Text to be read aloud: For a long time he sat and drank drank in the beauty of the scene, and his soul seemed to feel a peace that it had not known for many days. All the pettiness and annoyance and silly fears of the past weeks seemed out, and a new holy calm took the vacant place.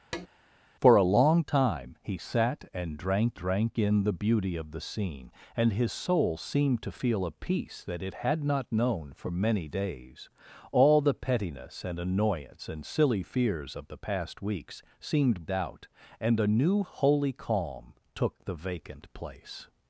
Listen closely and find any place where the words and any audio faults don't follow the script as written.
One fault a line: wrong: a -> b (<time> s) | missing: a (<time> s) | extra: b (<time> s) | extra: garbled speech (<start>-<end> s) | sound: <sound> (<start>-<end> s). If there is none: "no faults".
sound: tap (0.1-0.3 s)